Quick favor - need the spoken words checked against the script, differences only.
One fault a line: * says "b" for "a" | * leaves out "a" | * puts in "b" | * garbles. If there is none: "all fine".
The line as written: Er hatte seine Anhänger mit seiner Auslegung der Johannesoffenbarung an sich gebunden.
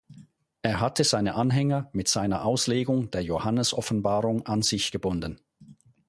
all fine